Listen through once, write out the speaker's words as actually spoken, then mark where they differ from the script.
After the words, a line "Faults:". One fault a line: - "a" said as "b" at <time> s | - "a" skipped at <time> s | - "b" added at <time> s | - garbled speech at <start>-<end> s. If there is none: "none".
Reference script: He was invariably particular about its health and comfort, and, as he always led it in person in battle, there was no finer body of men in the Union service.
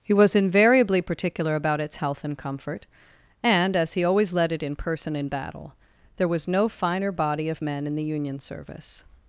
He was invariably particular about its health and comfort, and, as he always led it in person in battle, there was no finer body of men in the Union service.
Faults:
none